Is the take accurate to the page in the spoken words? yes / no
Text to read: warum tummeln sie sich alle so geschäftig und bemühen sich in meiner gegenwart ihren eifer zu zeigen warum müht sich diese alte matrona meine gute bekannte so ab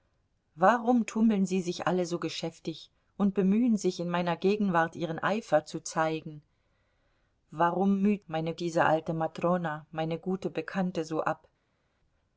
no